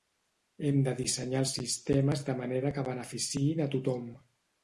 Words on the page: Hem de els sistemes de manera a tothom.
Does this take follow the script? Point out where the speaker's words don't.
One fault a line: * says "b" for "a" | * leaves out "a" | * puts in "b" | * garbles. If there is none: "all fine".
* puts in "dissenyar"
* puts in "que beneficiïn"